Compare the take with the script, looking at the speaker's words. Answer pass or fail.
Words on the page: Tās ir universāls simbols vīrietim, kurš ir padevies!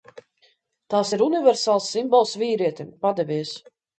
fail